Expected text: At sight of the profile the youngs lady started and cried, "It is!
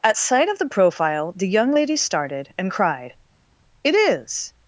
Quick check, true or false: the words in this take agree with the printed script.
false